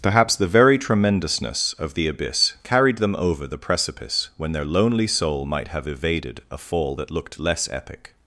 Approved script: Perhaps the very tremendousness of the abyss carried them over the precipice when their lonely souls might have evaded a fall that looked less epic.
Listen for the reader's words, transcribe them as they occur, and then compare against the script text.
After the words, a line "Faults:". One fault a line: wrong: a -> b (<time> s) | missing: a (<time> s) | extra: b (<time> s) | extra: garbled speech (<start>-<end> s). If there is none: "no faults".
Perhaps the very tremendousness of the abyss carried them over the precipice when their lonely soul might have evaded a fall that looked less epic.
Faults:
wrong: souls -> soul (5.0 s)